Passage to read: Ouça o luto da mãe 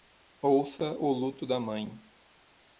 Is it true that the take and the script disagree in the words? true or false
false